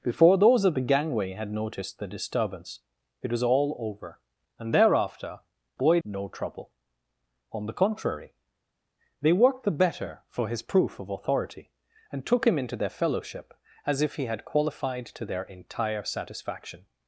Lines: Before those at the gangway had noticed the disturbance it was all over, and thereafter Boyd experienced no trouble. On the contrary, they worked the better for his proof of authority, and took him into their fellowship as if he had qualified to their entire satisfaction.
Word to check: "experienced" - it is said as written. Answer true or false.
false